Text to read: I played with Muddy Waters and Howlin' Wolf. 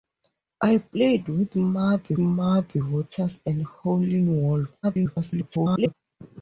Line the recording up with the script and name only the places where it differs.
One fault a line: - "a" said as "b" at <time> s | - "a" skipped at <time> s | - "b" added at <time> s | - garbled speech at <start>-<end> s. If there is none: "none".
- "Muddy" added at 2.2 s
- garbled speech at 4.8-5.9 s